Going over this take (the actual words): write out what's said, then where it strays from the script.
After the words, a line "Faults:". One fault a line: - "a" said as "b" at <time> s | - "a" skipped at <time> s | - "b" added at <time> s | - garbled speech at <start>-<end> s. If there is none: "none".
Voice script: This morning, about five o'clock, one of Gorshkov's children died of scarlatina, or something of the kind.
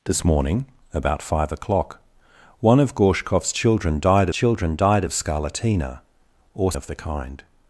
This morning, about five o'clock, one of Gorshkov's children died children died of scarlatina, or of the kind.
Faults:
- "children died" added at 4.3 s
- "something" skipped at 6.7 s